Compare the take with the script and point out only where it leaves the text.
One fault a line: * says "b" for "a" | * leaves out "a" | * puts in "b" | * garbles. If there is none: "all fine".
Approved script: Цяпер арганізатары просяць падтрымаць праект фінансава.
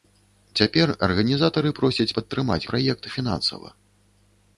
all fine